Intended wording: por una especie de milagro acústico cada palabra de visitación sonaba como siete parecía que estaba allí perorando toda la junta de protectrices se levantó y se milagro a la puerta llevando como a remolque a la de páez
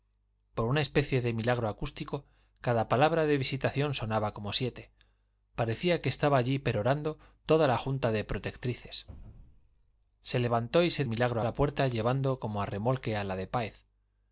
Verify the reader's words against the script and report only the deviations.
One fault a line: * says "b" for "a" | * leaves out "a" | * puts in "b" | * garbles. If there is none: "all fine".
all fine